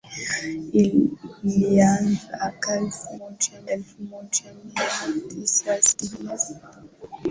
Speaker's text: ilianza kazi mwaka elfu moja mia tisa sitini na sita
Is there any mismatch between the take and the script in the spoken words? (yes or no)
yes